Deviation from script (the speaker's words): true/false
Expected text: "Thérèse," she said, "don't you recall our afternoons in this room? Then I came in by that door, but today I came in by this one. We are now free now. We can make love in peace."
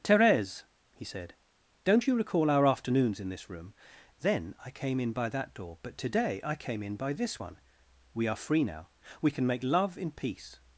true